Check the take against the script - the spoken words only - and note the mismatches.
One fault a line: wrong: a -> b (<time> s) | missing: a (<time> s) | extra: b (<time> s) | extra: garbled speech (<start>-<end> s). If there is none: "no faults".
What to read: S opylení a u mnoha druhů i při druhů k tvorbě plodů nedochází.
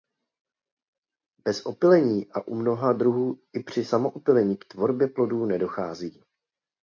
wrong: S -> Bez (1.4 s)
wrong: druhů -> samoopylení (3.9 s)